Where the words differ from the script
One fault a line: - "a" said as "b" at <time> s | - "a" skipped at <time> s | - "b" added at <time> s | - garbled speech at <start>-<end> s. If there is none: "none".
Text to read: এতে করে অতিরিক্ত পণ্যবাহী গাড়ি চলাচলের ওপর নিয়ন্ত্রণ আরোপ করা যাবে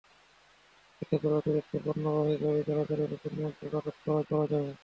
- "করা" added at 4.3 s